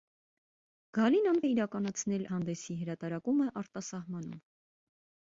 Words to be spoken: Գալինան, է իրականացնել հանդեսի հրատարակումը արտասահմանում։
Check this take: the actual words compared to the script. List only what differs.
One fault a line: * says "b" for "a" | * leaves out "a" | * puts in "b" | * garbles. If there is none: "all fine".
all fine